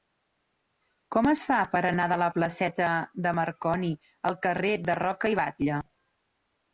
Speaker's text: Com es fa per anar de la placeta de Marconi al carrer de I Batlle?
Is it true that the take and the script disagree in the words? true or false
true